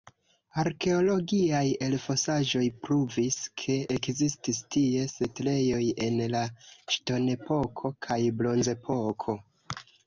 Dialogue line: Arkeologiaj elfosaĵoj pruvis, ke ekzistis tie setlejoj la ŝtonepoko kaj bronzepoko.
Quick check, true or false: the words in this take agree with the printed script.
false